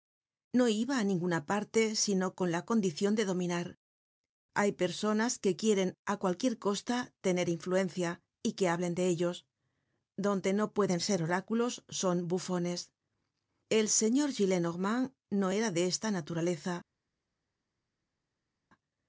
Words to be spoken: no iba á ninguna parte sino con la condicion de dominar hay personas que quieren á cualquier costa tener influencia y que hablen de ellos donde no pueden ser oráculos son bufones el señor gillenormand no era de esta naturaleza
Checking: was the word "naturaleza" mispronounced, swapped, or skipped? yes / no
no